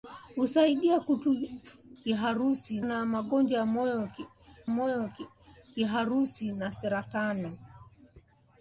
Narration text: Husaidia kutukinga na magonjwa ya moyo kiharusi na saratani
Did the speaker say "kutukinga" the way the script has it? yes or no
no